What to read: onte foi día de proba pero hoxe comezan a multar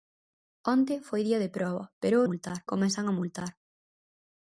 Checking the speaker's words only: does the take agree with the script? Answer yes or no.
no